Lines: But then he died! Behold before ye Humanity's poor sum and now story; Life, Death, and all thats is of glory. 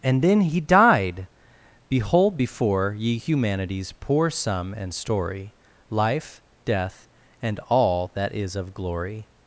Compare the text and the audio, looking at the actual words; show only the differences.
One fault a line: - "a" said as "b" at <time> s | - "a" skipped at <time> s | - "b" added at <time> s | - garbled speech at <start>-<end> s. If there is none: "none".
- "But" said as "And" at 0.0 s
- "now" skipped at 4.9 s
- "thats" said as "that" at 8.1 s